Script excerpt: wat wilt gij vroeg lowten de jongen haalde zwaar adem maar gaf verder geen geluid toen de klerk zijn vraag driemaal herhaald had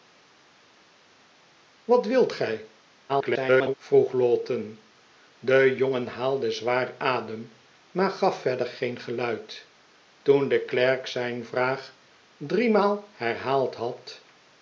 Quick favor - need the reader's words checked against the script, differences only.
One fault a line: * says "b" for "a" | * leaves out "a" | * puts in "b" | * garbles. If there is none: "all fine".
* garbles